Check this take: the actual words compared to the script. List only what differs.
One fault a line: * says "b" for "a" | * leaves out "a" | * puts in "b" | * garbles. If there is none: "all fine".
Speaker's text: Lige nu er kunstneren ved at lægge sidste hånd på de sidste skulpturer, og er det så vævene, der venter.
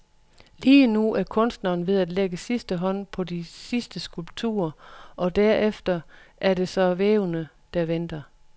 * puts in "derefter"